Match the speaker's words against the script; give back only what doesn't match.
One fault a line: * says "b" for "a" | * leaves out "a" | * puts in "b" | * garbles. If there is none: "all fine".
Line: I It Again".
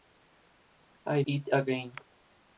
all fine